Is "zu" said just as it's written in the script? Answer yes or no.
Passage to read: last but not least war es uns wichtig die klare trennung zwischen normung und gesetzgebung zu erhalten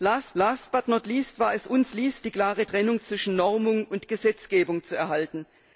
yes